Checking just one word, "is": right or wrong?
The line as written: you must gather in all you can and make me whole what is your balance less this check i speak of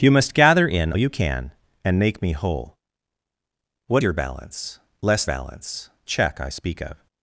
wrong